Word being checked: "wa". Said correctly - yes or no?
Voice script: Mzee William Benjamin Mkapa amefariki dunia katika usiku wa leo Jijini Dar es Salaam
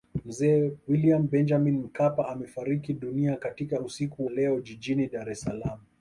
no